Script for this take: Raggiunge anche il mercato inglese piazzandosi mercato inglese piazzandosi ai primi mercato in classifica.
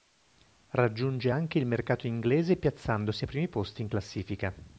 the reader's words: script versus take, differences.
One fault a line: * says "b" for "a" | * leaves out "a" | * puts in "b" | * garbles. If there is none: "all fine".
* leaves out "mercato inglese piazzandosi"
* says "posti" for "mercato"